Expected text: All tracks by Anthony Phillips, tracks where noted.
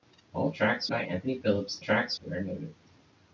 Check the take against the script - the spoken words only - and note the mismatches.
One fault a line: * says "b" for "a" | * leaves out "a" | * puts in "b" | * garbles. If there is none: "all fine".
all fine